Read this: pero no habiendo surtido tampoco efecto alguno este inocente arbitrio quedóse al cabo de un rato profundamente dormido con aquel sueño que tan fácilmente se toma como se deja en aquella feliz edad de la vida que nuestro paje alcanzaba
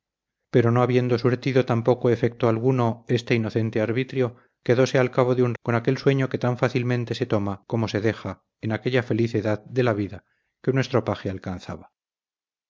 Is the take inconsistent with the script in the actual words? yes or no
yes